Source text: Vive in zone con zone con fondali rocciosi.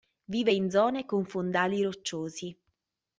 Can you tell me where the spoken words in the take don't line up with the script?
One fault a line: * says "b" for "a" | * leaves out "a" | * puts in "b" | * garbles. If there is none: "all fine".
* leaves out "zone con"